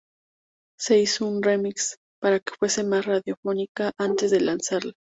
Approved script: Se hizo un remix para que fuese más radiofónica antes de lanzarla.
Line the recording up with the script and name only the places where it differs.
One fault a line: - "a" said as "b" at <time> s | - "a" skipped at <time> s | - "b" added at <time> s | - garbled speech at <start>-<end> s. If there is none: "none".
none